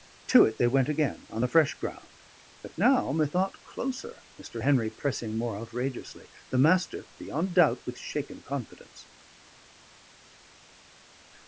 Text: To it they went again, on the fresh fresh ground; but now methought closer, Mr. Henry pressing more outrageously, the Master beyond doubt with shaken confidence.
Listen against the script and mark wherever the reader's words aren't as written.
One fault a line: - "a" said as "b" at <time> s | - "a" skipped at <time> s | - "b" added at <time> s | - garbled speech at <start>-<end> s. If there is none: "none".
- "fresh" skipped at 1.7 s